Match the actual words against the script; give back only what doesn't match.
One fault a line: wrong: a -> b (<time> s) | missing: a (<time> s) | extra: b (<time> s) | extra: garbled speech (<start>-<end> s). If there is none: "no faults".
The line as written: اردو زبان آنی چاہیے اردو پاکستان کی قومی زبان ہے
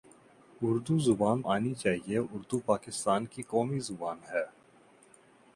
no faults